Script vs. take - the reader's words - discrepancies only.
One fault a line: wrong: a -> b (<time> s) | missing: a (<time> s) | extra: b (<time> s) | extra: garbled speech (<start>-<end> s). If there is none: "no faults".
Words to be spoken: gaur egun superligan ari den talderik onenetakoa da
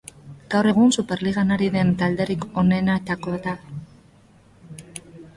no faults